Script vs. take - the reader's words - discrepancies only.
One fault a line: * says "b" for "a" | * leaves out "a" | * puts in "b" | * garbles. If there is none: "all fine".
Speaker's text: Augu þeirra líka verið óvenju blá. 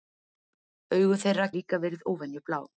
all fine